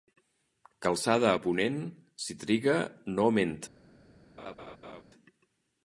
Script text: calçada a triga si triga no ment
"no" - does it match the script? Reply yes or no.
yes